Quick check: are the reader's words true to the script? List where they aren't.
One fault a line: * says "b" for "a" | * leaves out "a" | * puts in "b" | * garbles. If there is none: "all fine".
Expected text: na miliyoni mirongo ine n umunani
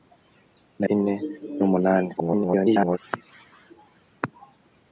* leaves out "miliyoni mirongo"
* garbles